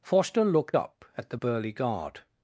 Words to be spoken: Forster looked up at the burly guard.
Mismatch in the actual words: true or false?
false